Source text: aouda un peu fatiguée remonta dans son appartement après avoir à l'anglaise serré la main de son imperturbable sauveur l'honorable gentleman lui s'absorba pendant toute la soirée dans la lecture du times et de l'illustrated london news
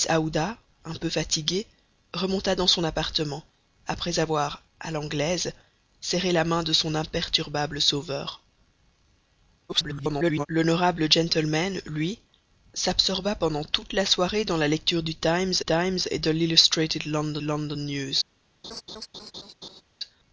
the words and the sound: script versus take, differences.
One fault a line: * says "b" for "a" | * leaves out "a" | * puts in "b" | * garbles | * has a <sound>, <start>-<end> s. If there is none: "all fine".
* garbles
* puts in "times"
* puts in "london"
* has a laugh, 18.6-19.8 s